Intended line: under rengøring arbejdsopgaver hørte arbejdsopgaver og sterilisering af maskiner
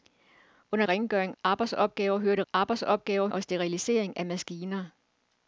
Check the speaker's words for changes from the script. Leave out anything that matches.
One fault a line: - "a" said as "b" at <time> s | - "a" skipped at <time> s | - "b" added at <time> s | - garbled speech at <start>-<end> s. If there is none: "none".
none